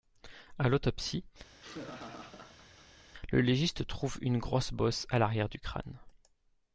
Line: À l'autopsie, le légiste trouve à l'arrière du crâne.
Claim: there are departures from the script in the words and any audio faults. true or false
true